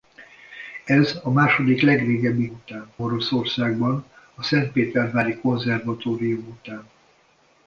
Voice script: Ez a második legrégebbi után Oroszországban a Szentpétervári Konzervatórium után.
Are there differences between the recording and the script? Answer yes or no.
no